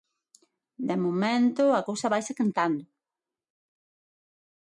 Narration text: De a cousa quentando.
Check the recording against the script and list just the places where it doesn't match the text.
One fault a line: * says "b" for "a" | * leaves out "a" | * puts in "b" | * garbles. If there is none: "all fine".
* puts in "momento"
* puts in "vaise"